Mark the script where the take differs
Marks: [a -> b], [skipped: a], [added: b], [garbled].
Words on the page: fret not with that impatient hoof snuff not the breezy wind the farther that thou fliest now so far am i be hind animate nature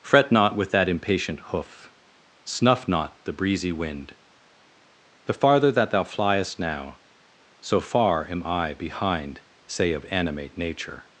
fret not with that impatient hoof snuff not the breezy wind the farther that thou fliest now so far am i [be hind -> behind say of] animate nature